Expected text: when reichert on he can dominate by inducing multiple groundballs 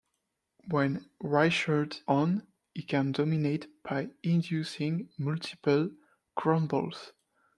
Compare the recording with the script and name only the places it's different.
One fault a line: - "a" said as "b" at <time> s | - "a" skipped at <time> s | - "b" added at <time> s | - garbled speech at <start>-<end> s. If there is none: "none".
none